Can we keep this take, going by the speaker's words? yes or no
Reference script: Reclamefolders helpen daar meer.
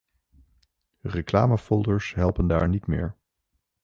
no